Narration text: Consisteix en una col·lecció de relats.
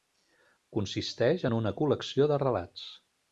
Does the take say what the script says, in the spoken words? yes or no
yes